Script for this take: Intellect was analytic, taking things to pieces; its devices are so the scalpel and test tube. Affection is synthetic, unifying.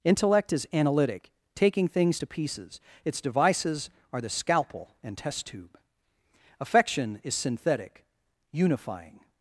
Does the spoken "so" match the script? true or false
false